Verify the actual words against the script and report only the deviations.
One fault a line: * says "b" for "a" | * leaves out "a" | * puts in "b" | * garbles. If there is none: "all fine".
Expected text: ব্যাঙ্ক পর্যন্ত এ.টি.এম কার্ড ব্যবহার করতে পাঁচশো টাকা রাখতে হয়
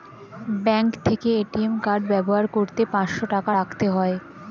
* says "থেকে" for "পর্যন্ত"